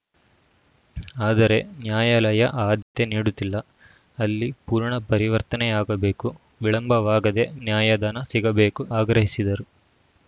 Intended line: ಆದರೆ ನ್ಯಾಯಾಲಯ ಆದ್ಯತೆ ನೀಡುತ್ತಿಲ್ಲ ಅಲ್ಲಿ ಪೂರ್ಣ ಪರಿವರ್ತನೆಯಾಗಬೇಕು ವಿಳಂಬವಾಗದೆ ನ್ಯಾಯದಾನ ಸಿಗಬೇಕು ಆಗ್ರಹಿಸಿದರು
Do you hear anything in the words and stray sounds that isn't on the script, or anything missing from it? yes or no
yes